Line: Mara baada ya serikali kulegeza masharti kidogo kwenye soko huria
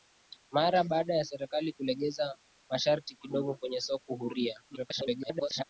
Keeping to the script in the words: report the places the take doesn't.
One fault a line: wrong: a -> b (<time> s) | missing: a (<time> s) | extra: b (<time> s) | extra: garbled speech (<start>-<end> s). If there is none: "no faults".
extra: garbled speech (4.7-5.6 s)